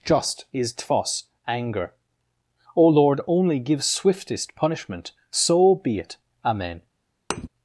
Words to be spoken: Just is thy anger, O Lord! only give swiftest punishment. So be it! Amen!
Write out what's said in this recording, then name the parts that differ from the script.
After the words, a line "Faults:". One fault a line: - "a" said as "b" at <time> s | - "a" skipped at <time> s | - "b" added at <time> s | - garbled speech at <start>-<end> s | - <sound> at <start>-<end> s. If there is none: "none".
Just is tfos anger, O Lord! only give swiftest punishment. So be it! Amen!
Faults:
- "thy" said as "tfos" at 0.7 s
- thud at 7.3-7.5 s